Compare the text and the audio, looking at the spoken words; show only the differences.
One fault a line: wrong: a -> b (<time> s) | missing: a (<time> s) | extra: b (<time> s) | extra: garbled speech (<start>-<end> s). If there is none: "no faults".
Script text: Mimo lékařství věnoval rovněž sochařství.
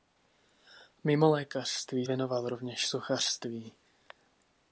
no faults